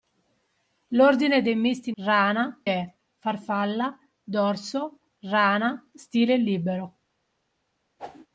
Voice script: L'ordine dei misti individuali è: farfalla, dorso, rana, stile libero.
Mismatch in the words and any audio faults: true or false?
true